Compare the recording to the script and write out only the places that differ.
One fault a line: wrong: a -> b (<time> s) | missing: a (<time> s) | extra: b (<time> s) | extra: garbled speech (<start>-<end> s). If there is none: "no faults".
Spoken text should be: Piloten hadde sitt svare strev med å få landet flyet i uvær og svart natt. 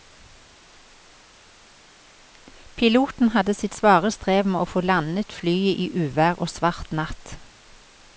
no faults